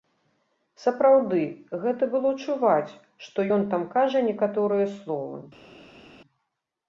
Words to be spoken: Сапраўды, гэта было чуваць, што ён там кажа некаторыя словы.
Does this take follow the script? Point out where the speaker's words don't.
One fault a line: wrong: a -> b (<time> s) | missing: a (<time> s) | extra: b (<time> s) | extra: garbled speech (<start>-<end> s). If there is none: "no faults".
no faults